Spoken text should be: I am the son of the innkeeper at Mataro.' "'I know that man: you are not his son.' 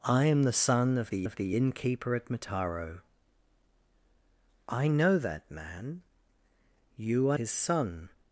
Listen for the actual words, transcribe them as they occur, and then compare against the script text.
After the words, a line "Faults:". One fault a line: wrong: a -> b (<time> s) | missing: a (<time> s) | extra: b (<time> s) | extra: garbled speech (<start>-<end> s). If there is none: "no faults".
I am the son of the of the innkeeper at Mataro.' "'I know that man: you are his son.'
Faults:
extra: of the (1.2 s)
missing: not (7.4 s)